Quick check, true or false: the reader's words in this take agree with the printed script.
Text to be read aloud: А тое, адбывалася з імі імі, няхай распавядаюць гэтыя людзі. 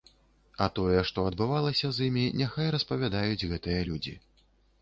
false